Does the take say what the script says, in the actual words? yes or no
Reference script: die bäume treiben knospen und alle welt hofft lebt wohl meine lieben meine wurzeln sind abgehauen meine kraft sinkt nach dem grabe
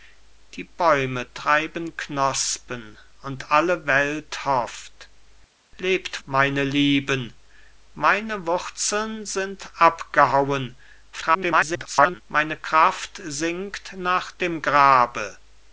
no